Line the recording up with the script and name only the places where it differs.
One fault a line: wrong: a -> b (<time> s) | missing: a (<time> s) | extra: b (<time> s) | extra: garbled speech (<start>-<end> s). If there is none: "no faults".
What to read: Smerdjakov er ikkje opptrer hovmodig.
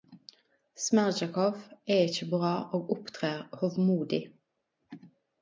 extra: bra og (2.3 s)